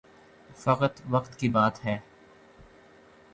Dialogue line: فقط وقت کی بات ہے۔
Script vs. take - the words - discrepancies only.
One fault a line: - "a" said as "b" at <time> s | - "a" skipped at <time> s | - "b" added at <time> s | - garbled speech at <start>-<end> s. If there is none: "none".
none